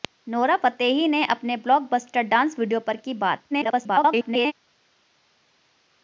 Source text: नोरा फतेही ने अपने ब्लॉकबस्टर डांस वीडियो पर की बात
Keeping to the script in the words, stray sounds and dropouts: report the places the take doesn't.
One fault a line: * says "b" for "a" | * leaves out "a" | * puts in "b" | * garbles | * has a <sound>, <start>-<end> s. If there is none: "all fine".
* garbles